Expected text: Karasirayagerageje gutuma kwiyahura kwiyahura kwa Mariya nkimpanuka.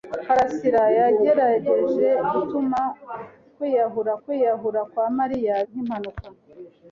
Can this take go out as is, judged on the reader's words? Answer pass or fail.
pass